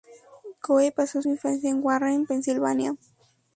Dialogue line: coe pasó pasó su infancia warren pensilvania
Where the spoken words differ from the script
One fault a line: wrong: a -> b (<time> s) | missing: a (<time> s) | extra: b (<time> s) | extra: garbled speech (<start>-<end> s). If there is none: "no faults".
missing: pasó (1.2 s)
extra: en (1.7 s)